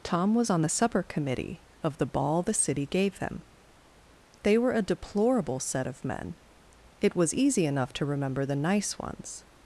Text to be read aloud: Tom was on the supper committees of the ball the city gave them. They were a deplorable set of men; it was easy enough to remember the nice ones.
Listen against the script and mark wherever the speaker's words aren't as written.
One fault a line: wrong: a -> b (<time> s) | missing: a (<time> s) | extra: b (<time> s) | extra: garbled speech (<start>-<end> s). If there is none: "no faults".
wrong: committees -> committee (1.0 s)